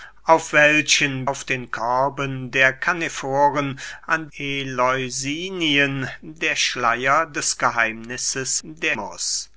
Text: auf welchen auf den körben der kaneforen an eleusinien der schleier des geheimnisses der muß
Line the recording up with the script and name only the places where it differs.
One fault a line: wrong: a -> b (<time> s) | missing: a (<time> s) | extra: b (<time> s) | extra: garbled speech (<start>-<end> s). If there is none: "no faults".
no faults